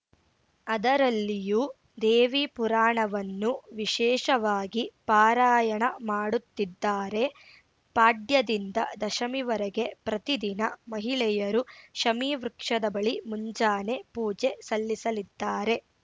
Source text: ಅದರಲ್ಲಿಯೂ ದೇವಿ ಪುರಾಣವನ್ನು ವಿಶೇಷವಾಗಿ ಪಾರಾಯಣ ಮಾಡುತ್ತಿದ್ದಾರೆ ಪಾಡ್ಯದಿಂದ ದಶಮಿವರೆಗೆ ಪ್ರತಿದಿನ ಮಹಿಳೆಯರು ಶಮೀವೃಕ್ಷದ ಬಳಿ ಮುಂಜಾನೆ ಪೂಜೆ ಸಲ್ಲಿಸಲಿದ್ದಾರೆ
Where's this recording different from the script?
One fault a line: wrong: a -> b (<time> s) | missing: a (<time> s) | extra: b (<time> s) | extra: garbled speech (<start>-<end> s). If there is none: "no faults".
no faults